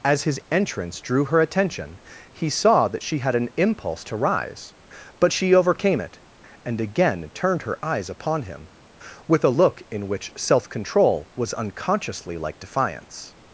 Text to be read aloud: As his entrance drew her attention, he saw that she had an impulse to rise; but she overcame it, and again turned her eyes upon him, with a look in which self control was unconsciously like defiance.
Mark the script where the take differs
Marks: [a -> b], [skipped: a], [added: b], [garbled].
As his entrance drew her attention, he saw that she had an impulse to rise; but she overcame it, and again turned her eyes upon him, with a look in which self control was unconsciously like defiance.